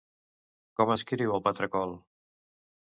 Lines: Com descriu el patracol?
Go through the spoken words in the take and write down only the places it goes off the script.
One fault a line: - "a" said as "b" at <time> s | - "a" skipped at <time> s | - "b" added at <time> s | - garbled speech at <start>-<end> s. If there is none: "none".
none